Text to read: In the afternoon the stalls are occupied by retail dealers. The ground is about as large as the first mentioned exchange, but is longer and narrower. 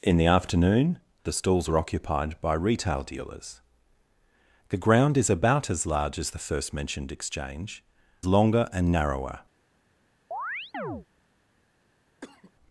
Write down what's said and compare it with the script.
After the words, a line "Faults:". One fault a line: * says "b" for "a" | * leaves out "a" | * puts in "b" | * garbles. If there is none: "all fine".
In the afternoon the stalls are occupied by retail dealers. The ground is about as large as the first mentioned exchange, longer and narrower.
Faults:
* leaves out "but is"